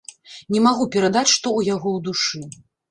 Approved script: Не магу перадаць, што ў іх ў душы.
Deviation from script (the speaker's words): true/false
true